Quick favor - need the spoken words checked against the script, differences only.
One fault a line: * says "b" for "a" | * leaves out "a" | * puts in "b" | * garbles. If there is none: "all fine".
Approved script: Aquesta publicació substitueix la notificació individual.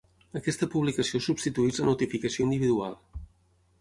all fine